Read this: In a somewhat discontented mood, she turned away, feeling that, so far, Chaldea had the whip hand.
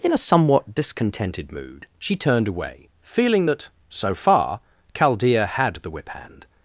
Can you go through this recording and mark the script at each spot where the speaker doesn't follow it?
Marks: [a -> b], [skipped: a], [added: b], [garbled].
In a somewhat discontented mood, she turned away, feeling that, so far, Chaldea had the whip hand.